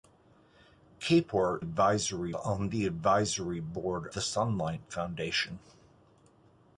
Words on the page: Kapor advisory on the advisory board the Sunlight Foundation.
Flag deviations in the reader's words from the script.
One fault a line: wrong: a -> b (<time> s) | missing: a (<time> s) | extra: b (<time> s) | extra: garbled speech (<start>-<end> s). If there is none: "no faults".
no faults